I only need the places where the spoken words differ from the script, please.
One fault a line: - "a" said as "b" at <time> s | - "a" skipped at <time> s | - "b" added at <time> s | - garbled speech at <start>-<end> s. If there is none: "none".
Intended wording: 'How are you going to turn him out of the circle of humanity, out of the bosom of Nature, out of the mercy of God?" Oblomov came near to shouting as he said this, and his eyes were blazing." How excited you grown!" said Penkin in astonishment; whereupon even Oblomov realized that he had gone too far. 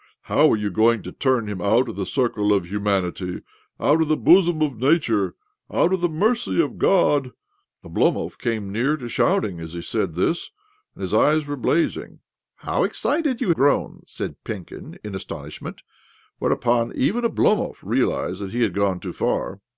none